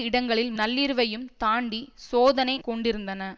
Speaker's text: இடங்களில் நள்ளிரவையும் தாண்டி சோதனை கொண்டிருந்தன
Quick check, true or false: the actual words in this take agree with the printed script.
true